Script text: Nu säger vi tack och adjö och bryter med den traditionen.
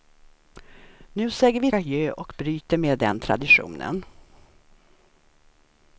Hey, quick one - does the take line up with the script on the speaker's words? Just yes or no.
no